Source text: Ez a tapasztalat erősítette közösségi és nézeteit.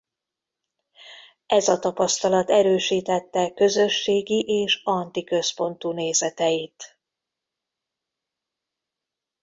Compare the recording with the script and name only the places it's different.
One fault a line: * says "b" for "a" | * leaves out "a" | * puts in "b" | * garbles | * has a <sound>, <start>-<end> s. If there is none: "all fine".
* puts in "anti központú"